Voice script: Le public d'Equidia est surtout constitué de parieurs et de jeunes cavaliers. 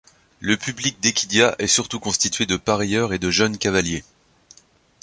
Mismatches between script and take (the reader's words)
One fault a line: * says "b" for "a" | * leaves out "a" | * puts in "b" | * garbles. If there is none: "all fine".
all fine